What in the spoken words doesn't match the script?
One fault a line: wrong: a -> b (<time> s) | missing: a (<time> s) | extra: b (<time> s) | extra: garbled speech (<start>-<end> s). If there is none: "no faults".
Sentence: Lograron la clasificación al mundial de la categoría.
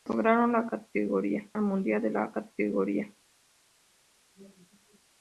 wrong: clasificación -> categoría (0.7 s)